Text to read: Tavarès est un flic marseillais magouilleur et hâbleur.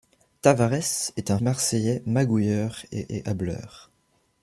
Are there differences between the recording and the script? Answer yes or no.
yes